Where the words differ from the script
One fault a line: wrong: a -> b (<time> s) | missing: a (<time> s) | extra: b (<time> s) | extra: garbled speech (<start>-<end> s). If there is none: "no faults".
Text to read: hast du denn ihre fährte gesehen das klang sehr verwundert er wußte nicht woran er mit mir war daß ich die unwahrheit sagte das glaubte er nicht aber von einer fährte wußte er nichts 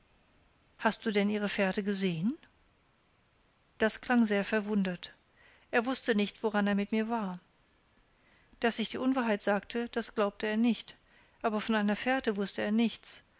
no faults